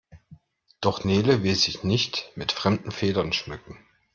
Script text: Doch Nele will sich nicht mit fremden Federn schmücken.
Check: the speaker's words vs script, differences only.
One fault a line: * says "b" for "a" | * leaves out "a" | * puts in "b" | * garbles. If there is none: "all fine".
all fine